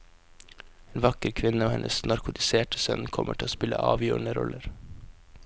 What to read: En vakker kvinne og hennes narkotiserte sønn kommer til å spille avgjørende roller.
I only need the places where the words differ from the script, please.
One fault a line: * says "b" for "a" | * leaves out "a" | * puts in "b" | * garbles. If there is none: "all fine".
all fine